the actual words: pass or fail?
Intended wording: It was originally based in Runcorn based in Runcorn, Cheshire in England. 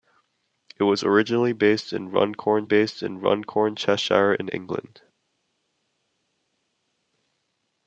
pass